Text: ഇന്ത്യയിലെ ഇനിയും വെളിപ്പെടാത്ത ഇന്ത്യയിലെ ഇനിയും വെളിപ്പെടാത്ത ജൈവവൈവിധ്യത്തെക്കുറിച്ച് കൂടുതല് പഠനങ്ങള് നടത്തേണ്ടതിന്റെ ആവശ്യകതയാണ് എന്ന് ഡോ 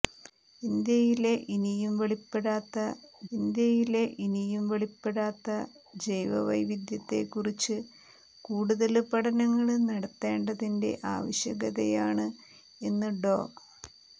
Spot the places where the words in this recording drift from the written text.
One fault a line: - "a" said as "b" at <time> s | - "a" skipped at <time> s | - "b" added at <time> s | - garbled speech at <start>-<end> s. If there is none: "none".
none